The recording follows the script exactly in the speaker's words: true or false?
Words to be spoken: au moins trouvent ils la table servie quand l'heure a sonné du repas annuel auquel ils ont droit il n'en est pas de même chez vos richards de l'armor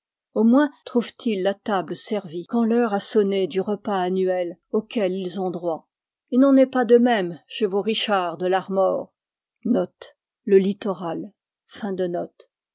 true